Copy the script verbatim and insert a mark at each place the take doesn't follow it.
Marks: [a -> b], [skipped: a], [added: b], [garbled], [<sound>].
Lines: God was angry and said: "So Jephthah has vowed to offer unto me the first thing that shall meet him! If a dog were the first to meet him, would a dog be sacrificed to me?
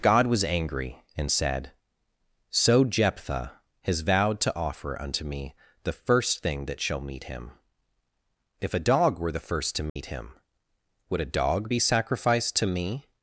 God was angry and said: "So Jephthah has vowed to offer unto me the first thing that shall meet him! If a dog were the first to meet [dropout] him, would a dog be sacrificed to me?